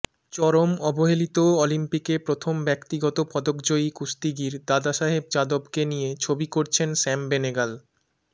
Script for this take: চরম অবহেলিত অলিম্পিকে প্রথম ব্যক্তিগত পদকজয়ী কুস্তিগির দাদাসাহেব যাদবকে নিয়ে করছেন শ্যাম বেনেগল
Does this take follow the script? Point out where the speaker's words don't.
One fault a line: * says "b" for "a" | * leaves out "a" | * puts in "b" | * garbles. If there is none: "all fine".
* puts in "ছবি"